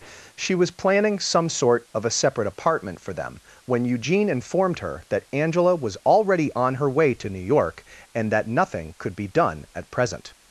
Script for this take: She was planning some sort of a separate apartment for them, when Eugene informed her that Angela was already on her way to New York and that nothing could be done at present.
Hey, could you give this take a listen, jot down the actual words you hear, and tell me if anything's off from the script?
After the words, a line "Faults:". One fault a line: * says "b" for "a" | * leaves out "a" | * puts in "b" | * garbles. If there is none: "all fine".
She was planning some sort of a separate apartment for them, when Eugene informed her that Angela was already on her way to New York and that nothing could be done at present.
Faults:
all fine